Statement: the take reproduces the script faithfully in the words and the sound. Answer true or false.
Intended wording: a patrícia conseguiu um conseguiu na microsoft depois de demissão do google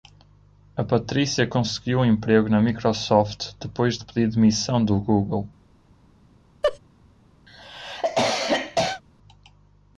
false